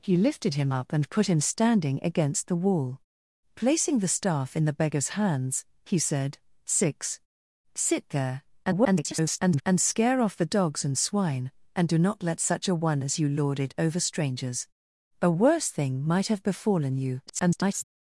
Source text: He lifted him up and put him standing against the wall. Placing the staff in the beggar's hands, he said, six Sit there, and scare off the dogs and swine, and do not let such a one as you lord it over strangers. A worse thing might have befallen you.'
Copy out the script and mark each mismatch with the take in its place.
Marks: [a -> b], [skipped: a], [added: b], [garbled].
He lifted him up and put him standing against the wall. Placing the staff in the beggar's hands, he said, six Sit there, [garbled] and scare off the dogs and swine, and do not let such a one as you lord it over strangers. A worse thing might have befallen you.' [garbled]